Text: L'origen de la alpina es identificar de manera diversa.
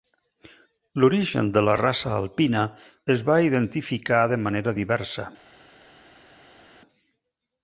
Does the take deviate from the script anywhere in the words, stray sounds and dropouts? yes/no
yes